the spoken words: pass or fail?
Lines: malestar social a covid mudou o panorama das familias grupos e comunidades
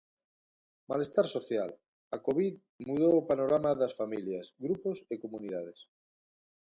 pass